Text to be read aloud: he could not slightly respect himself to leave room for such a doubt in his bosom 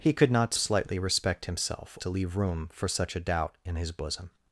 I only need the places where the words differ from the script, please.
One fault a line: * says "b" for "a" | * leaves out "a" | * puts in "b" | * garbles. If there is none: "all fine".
all fine